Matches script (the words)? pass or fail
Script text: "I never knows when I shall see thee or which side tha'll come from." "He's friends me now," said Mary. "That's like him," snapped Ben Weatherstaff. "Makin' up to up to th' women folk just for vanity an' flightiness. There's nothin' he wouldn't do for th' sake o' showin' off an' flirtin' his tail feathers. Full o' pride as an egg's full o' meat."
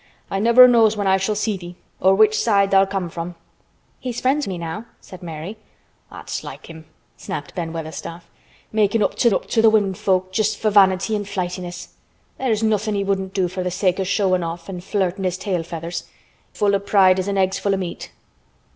pass